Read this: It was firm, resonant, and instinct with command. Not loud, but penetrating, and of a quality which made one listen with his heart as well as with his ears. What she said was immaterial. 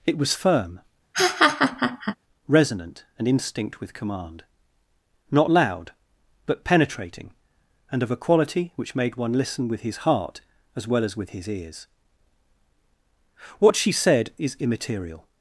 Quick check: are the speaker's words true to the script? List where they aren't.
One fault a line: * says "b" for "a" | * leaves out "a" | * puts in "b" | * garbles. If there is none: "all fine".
* says "is" for "was"